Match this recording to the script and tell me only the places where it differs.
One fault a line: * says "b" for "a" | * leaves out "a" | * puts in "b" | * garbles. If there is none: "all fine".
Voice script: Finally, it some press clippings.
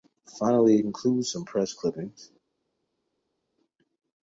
* puts in "includes"